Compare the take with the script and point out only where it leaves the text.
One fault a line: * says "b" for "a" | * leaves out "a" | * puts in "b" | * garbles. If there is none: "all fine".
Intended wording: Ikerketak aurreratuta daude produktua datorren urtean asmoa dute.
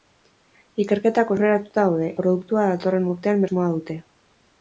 all fine